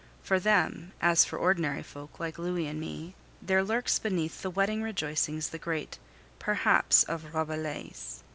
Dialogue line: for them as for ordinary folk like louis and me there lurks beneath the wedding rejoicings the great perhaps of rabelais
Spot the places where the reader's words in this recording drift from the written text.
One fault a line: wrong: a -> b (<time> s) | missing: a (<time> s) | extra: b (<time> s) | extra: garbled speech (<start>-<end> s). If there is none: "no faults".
no faults